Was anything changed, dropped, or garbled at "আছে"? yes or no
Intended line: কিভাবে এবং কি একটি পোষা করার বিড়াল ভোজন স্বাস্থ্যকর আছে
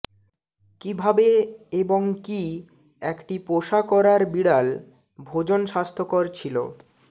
yes